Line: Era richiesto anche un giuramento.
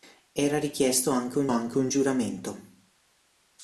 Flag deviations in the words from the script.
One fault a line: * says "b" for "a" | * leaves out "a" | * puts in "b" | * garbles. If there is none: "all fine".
* puts in "anche un"